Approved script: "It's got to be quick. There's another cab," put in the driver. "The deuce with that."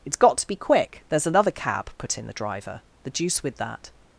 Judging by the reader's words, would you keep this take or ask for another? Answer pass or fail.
pass